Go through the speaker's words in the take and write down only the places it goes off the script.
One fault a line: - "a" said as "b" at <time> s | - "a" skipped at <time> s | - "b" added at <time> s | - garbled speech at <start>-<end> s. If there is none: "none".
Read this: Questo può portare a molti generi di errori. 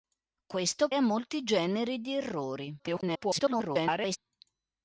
- "può portare" skipped at 0.9 s
- garbled speech at 2.8-4.2 s